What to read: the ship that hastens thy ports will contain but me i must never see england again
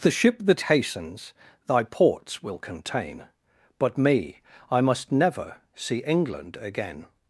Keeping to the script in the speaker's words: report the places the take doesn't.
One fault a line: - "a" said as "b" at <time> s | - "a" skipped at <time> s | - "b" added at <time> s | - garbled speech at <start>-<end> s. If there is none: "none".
none